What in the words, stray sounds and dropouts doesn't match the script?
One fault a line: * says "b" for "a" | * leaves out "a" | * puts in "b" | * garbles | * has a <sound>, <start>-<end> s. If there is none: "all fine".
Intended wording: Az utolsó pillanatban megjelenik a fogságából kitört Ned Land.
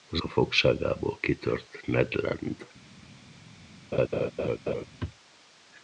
* leaves out "utolsó pillanatban megjelenik"
* has a laugh, 3.9-4.9 s